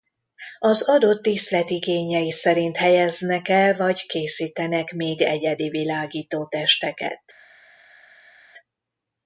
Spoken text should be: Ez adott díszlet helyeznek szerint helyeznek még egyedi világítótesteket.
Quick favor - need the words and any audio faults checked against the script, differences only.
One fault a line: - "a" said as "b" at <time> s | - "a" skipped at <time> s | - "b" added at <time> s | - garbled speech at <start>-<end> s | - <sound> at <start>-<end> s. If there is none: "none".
- "Ez" said as "Az" at 0.6 s
- "helyeznek" said as "igényei" at 1.7 s
- "el vagy készítenek" added at 3.5 s